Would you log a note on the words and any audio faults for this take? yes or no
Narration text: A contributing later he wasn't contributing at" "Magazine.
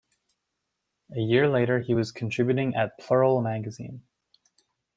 yes